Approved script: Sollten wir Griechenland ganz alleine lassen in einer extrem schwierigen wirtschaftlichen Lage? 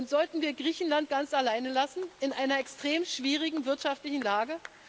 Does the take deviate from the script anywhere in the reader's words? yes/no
no